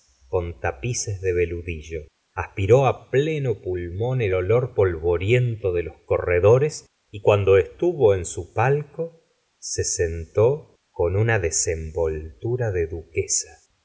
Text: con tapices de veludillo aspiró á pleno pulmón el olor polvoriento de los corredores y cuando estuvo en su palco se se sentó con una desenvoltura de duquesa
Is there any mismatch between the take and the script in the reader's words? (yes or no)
yes